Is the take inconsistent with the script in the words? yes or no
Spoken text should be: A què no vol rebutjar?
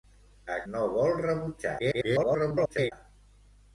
yes